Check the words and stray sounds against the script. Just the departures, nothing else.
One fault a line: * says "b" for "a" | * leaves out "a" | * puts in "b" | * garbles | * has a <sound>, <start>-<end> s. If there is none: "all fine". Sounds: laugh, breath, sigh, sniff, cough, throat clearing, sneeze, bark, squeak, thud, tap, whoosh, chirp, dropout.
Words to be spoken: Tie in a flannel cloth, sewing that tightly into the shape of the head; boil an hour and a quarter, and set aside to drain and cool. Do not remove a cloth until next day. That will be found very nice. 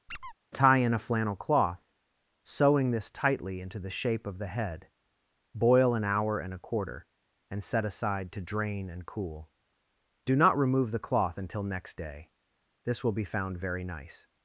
* has a squeak, 0.1-0.3 s
* says "this" for "that"
* says "the" for "a"
* says "This" for "That"